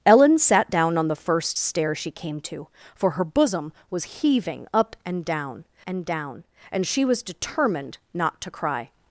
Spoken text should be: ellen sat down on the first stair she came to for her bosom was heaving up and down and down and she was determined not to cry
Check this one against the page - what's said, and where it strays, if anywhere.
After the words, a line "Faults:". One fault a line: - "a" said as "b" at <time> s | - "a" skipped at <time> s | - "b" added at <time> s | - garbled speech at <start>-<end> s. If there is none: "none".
ellen sat down on the first stair she came to for her bosom was heaving up and down and down and she was determined not to cry
Faults:
none